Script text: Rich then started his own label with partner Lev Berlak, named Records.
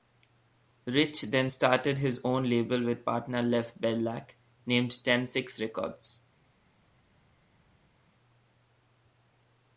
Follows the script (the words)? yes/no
no